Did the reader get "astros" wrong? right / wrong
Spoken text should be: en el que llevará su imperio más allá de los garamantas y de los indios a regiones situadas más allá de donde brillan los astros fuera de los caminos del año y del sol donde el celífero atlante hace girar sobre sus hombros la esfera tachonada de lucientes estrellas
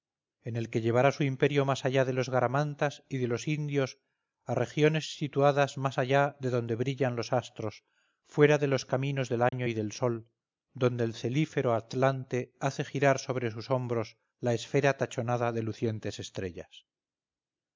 right